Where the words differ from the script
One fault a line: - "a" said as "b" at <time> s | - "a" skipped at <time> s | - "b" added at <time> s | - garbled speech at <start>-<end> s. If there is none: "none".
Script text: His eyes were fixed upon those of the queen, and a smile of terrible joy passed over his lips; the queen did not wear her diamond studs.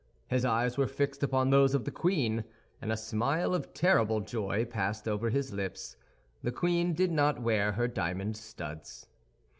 none